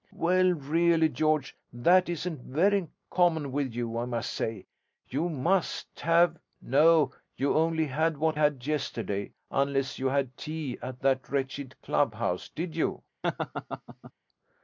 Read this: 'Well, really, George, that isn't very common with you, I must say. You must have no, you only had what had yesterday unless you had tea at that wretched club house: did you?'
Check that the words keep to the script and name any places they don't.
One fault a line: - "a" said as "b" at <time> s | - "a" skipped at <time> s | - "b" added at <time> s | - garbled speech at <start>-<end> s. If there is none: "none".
none